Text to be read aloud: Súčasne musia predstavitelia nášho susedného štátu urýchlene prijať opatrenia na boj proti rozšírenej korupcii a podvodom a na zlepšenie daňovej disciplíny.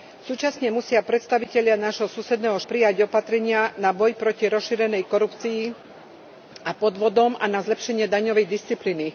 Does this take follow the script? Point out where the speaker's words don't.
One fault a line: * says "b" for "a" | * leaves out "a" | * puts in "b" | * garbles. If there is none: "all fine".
* leaves out "štátu urýchlene"